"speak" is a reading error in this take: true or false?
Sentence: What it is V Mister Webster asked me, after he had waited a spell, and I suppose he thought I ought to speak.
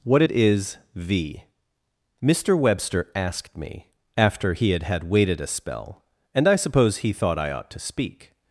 false